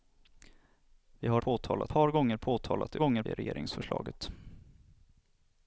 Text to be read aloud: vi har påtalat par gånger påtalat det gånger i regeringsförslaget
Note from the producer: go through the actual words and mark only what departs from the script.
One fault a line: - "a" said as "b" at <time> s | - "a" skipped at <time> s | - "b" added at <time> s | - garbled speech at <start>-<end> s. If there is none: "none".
none